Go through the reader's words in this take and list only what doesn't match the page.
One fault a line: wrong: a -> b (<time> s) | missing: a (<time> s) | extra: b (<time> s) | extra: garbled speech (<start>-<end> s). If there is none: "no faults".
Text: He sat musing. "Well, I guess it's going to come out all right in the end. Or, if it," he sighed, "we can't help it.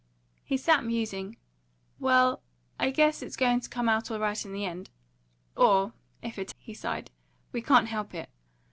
no faults